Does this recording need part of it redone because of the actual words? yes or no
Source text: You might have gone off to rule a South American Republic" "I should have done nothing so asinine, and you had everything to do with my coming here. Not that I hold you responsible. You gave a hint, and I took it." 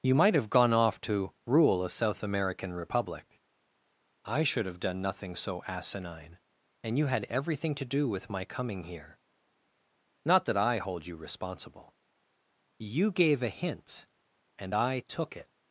no